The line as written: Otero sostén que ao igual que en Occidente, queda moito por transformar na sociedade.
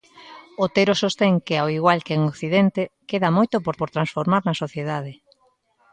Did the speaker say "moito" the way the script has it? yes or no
yes